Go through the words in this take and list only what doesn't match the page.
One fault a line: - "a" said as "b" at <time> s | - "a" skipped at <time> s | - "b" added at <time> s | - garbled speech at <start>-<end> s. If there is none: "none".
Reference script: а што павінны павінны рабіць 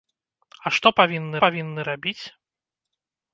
none